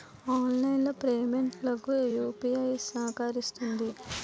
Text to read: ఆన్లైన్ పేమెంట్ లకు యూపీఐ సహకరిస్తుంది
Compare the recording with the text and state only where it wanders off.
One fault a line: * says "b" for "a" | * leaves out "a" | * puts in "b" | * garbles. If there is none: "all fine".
all fine